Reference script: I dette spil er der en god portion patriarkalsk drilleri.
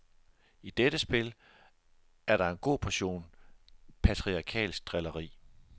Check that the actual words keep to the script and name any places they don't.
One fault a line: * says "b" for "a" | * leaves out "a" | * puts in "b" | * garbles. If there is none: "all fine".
all fine